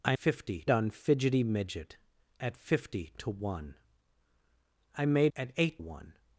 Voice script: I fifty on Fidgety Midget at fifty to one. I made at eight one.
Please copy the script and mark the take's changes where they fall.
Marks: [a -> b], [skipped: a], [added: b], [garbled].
I fifty on Fidgety Midget at fifty to one. I made at eight one.